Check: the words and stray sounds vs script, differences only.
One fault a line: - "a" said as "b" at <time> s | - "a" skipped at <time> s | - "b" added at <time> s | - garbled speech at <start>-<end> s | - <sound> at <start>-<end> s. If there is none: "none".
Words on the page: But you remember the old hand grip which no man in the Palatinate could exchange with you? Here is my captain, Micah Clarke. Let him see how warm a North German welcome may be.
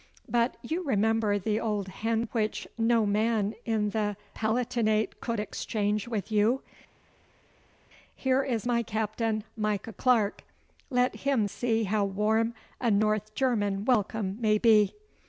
- "grip" skipped at 2.2 s